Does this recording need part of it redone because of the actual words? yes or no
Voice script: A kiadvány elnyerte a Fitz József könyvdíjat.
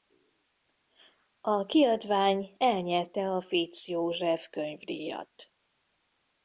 no